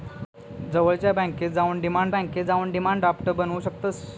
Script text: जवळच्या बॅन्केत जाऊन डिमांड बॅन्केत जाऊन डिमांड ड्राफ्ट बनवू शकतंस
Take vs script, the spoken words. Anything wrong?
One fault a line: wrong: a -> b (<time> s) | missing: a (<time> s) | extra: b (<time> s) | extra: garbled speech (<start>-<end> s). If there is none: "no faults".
no faults